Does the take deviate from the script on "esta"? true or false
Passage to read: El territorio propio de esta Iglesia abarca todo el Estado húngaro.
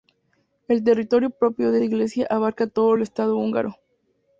true